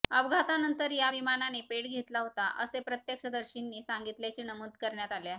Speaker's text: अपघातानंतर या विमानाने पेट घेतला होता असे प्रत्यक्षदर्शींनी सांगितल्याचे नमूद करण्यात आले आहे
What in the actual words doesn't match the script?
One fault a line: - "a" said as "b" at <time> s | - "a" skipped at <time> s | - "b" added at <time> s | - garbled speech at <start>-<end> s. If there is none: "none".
none